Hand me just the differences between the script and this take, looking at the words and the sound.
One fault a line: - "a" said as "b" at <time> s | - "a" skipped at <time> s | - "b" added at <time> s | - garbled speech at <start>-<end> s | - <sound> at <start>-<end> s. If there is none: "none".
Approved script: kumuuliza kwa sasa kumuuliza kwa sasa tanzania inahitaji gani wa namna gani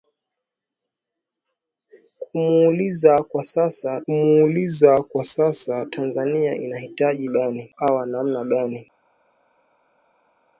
none